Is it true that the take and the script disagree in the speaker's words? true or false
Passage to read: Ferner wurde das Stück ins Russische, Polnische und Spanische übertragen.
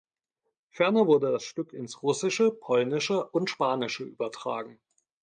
false